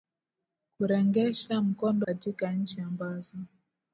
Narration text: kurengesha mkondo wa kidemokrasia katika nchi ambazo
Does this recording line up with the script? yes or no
no